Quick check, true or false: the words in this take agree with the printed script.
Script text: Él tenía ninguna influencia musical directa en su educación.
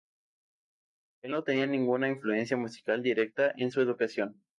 false